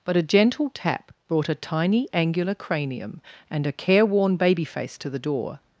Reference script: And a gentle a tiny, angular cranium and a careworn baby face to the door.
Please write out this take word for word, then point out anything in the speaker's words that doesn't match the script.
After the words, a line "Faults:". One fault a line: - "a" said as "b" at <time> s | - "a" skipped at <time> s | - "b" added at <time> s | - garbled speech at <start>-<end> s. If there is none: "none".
But a gentle tap brought a tiny, angular cranium and a careworn baby face to the door.
Faults:
- "And" said as "But" at 0.0 s
- "tap brought" added at 0.7 s